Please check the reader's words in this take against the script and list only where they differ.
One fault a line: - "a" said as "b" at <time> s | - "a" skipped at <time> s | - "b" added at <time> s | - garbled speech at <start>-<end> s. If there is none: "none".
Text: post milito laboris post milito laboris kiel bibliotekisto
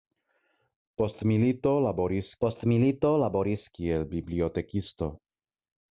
none